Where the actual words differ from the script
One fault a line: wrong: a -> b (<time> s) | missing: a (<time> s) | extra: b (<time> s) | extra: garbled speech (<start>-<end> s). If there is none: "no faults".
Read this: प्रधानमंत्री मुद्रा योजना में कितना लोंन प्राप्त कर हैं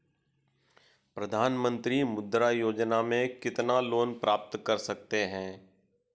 extra: सकते (4.8 s)